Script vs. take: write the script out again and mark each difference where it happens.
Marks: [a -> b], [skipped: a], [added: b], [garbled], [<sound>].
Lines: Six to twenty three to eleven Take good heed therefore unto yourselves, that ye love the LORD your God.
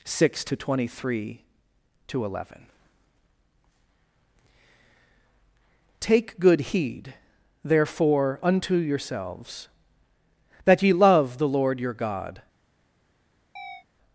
Six to twenty three to eleven Take good heed therefore unto yourselves, that ye love the LORD your God. [chirp]